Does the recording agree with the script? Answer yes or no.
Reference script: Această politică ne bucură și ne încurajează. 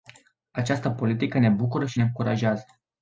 yes